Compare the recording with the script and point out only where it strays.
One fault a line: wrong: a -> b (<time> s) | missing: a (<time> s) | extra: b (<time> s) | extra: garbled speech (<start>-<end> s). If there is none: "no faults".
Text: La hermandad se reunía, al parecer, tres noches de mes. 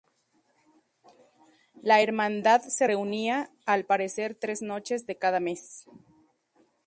extra: cada (5.2 s)